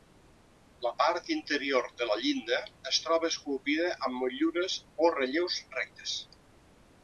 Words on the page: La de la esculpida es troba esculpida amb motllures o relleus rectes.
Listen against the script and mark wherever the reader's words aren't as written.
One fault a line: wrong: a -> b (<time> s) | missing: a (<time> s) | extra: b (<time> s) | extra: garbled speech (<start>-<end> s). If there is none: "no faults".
extra: part interior (1.0 s)
wrong: esculpida -> llinda (2.2 s)